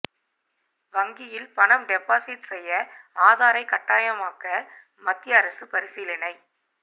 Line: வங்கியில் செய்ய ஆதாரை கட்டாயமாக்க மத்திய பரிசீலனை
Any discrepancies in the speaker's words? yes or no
yes